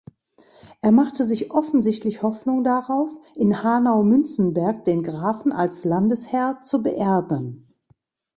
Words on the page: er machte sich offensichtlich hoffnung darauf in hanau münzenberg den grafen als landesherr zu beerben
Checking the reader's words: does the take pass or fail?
pass